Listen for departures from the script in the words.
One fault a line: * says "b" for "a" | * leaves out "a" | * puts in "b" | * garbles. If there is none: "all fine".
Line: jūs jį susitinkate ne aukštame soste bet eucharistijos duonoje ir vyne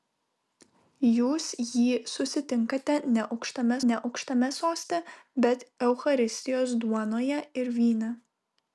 * puts in "ne aukštame"